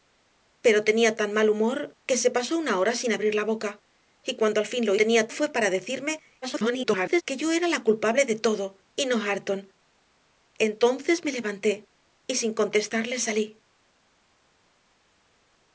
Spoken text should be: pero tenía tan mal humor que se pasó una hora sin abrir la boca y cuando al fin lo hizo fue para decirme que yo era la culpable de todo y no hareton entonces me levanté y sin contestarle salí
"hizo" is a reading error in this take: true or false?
true